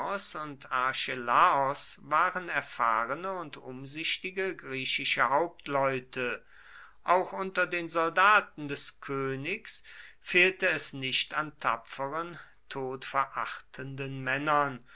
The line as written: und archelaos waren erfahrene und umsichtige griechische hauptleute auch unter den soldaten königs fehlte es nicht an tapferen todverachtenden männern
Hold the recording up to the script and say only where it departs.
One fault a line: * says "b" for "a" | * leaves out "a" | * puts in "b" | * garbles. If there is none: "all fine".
* puts in "des"